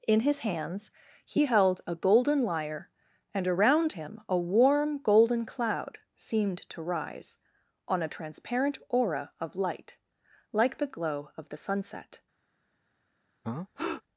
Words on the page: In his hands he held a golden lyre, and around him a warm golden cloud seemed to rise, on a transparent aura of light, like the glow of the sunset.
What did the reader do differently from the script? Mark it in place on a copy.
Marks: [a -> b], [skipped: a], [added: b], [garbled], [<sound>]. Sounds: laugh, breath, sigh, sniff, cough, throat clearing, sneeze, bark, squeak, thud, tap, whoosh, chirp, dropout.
In his hands he held a golden lyre, and around him a warm golden cloud seemed to rise, on a transparent aura of light, like the glow of the sunset. [breath]